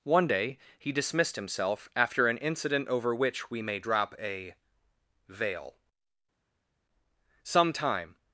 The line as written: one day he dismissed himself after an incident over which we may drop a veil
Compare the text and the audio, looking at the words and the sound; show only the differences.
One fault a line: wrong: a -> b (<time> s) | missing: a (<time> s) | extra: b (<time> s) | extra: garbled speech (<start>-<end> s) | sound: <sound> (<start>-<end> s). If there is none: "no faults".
extra: some time (7.4 s)